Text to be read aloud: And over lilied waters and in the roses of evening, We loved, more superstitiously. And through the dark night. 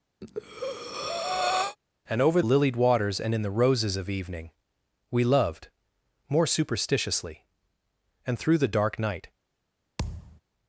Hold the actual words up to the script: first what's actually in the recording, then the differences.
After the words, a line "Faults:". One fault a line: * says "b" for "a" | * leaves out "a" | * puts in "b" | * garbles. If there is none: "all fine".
And over lilied waters and in the roses of evening, We loved, more superstitiously. And through the dark night.
Faults:
all fine